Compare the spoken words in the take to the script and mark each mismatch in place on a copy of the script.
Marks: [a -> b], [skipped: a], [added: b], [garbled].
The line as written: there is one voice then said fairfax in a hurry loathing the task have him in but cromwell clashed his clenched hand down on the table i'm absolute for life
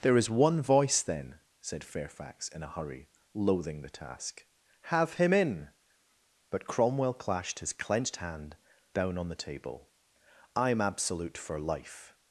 there is one voice then said fairfax in a hurry loathing the task have him in but cromwell clashed his clenched hand down on the table i'm absolute for life